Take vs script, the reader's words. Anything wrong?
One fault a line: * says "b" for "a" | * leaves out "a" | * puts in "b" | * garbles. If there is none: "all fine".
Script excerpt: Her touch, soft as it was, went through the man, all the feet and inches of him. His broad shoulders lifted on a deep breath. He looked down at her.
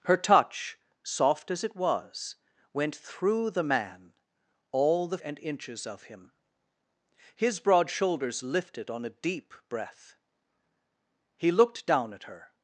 * leaves out "feet"